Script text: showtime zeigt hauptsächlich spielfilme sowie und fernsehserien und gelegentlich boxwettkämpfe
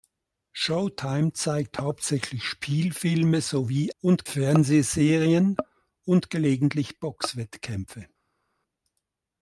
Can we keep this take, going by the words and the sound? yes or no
yes